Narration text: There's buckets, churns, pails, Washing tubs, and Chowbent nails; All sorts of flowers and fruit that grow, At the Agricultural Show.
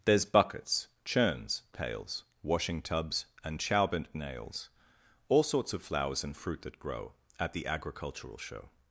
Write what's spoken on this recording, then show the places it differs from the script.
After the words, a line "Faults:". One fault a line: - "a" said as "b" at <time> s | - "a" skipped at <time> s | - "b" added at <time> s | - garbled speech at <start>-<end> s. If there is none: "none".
There's buckets, churns, pails, Washing tubs, and Chowbent nails; All sorts of flowers and fruit that grow, At the Agricultural Show.
Faults:
none